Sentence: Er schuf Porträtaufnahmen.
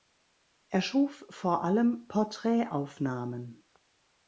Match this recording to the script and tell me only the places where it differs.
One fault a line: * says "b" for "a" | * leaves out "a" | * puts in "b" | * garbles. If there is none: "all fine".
* puts in "vor allem"